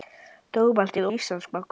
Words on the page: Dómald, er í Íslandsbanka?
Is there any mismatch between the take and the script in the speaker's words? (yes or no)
no